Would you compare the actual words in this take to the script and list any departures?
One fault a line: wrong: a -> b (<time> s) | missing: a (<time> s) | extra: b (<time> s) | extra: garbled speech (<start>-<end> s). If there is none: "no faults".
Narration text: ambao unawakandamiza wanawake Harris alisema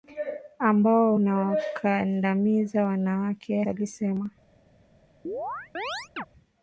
missing: Harris (3.6 s)